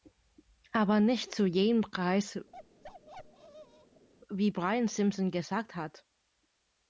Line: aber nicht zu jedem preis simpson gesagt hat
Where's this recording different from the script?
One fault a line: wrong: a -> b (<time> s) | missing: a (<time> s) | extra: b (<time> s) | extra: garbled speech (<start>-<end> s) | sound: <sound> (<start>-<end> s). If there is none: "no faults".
sound: bark (2.5-4.1 s)
extra: wie brian (4.3 s)